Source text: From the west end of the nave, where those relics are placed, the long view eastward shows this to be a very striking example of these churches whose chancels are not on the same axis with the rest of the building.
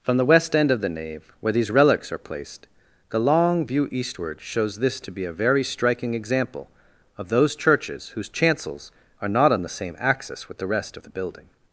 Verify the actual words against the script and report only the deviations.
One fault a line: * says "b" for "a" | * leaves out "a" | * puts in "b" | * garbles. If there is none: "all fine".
* says "these" for "those"
* says "those" for "these"